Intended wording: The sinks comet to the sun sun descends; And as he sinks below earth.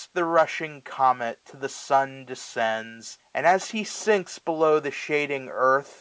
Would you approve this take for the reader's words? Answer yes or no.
no